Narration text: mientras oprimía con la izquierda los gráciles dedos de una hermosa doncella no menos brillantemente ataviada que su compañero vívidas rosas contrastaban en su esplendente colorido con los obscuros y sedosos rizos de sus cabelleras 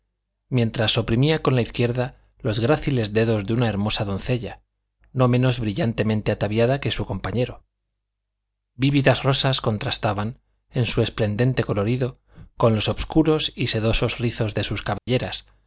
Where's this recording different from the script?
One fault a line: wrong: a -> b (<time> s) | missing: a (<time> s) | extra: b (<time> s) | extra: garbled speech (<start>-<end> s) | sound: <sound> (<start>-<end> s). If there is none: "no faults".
sound: dropout (15.0-15.1 s)